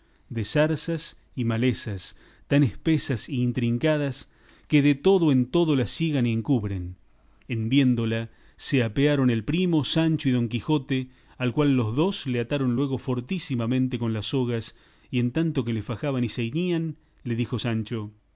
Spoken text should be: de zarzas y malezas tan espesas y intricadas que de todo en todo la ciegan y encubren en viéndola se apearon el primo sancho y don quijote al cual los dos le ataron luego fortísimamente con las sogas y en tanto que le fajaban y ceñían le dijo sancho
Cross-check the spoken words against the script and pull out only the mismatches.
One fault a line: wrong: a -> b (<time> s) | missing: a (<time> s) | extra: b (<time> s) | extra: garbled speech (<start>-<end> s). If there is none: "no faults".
no faults